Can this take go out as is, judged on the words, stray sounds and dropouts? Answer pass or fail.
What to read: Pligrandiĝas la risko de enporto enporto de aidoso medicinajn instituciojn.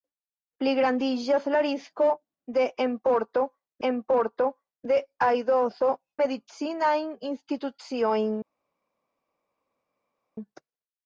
pass